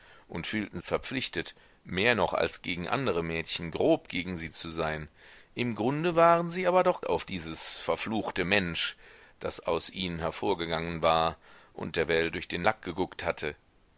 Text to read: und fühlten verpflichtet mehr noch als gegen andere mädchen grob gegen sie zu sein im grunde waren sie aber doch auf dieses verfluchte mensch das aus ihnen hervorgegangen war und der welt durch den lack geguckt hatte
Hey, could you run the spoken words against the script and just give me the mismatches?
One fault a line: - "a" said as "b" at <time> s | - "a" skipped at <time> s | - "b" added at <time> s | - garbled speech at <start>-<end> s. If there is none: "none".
none